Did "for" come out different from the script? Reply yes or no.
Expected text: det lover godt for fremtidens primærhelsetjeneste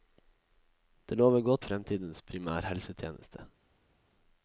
yes